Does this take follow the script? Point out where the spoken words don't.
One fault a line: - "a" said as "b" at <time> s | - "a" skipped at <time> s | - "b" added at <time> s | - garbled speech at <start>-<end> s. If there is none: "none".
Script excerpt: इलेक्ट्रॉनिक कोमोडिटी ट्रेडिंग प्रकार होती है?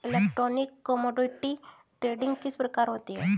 - "किस" added at 2.4 s